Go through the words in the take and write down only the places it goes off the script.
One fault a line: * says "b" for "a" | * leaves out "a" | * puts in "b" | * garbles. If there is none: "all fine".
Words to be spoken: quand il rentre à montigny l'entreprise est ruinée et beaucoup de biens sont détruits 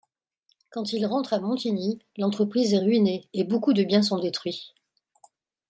all fine